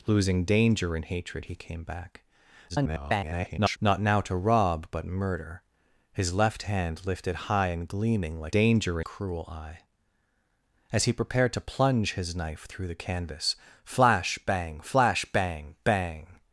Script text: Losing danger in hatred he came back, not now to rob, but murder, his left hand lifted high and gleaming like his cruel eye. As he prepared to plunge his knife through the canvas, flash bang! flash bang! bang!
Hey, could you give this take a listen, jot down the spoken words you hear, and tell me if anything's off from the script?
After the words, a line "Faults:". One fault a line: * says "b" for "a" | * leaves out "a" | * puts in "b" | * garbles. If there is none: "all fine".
Losing danger in hatred he came back, [garbled] not now to rob, but murder, his left hand lifted high and gleaming like danger cruel eye. As he prepared to plunge his knife through the canvas, flash bang! flash bang! bang!
Faults:
* garbles
* says "danger" for "his"